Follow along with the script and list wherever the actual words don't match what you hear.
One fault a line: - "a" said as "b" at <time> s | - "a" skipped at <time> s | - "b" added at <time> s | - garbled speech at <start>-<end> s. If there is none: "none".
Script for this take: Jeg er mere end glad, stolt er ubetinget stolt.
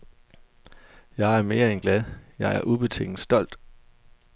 - "stolt" said as "jeg" at 2.4 s